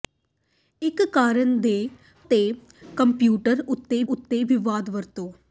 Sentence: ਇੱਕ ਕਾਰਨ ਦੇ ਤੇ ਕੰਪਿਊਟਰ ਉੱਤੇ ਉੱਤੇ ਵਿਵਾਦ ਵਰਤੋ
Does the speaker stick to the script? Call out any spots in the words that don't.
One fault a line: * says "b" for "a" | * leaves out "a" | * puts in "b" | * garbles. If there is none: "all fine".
all fine